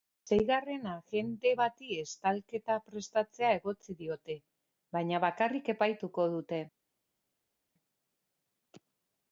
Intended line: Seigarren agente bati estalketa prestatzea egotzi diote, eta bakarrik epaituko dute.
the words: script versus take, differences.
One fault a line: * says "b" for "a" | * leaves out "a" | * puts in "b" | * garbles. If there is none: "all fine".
* says "baina" for "eta"